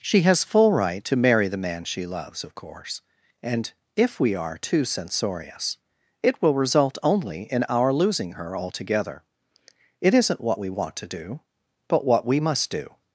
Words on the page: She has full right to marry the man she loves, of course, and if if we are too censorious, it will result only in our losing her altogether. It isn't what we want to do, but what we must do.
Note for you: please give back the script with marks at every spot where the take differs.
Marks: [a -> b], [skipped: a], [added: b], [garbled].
She has full right to marry the man she loves, of course, and if [skipped: if] we are too censorious, it will result only in our losing her altogether. It isn't what we want to do, but what we must do.